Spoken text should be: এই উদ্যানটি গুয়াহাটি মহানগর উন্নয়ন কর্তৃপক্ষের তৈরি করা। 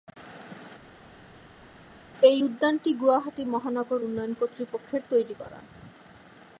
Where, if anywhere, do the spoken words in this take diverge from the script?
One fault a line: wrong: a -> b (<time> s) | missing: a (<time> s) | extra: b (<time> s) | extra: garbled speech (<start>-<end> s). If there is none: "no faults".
no faults